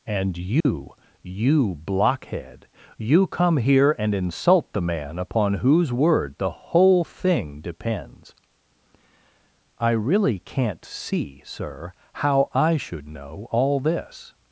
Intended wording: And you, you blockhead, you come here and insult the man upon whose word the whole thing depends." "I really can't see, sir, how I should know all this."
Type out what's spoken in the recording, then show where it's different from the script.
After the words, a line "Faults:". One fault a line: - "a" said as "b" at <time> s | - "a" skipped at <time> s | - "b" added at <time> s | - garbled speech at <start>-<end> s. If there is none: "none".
And you, you blockhead, you come here and insult the man upon whose word the whole thing depends." "I really can't see, sir, how I should know all this."
Faults:
none